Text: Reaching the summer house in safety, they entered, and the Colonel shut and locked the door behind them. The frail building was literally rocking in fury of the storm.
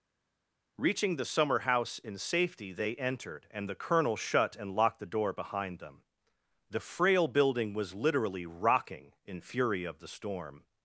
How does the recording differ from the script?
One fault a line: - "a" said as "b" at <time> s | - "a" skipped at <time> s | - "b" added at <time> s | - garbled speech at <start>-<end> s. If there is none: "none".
none